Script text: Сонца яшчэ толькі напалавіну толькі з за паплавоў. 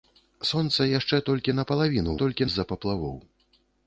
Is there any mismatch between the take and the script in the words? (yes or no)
no